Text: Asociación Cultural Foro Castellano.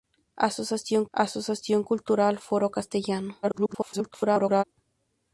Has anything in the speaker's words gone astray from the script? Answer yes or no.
yes